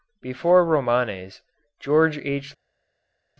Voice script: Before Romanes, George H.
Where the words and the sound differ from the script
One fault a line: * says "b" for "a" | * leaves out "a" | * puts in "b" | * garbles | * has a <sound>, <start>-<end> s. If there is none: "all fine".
all fine